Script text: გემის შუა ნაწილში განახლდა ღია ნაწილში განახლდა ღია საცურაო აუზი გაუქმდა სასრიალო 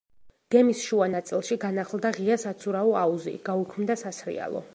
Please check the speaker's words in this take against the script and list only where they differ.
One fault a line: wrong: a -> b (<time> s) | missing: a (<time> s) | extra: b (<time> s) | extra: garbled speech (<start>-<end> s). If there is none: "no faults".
missing: ნაწილში განახლდა ღია (2.4 s)